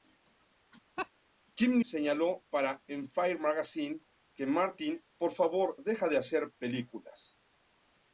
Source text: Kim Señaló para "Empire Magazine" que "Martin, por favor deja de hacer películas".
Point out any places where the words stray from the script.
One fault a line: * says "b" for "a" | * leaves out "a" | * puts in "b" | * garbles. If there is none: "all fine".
all fine